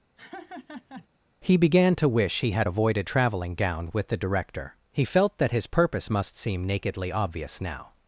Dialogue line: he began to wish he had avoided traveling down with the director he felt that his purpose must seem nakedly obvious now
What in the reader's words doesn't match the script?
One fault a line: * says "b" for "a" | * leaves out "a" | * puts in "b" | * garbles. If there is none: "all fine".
* says "gown" for "down"